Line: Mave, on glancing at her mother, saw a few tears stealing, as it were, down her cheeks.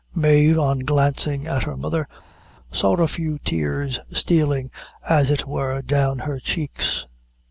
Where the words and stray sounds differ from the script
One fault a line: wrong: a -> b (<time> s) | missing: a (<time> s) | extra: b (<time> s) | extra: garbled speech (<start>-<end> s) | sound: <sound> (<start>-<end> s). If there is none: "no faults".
no faults